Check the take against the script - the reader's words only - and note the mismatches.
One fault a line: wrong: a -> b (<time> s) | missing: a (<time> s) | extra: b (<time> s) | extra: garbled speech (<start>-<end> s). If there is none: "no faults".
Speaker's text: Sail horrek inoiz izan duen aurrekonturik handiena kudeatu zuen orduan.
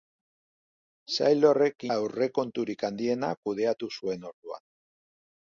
missing: inoiz izan duen (1.9 s)